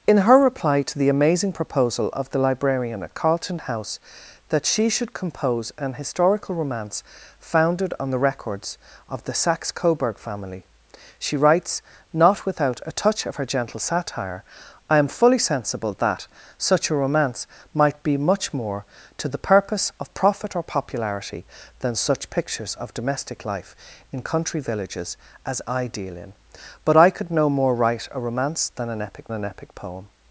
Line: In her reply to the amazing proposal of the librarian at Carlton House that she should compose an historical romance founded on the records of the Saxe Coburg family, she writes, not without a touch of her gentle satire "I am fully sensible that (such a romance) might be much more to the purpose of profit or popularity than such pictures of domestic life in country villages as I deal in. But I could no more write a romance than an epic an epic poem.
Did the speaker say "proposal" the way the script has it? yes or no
yes